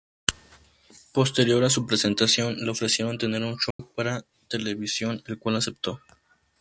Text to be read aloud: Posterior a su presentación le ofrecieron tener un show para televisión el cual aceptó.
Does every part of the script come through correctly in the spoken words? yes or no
yes